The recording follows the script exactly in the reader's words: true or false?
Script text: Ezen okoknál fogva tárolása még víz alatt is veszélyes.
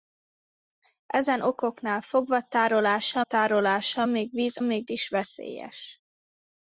false